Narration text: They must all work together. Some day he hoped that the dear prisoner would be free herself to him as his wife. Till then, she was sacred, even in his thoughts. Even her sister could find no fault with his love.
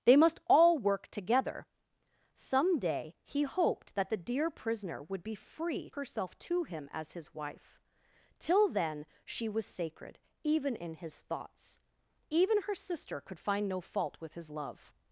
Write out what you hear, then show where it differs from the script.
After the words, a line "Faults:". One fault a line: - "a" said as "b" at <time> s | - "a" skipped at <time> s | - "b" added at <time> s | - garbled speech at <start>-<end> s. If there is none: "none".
They must all work together. Some day he hoped that the dear prisoner would be free herself to him as his wife. Till then, she was sacred, even in his thoughts. Even her sister could find no fault with his love.
Faults:
none